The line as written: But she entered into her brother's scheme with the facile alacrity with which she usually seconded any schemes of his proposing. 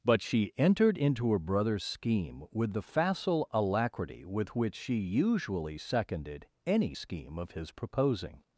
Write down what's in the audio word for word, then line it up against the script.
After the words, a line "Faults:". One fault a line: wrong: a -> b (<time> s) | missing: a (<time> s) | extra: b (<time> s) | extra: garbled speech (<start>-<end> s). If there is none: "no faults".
But she entered into her brother's scheme with the facile alacrity with which she usually seconded any scheme of his proposing.
Faults:
wrong: schemes -> scheme (6.9 s)